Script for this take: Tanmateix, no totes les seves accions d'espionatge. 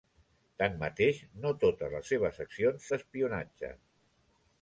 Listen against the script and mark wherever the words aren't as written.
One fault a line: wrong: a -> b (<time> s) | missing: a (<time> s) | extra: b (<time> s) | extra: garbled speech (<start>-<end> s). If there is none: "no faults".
no faults